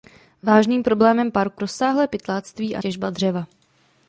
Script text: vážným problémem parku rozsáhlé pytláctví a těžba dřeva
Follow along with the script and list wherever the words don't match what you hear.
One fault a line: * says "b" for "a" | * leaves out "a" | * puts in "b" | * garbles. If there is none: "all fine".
all fine